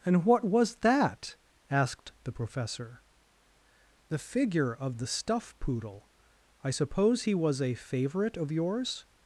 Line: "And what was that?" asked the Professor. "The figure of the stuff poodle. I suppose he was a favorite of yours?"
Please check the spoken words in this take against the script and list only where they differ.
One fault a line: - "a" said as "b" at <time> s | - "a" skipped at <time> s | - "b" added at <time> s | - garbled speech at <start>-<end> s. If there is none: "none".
none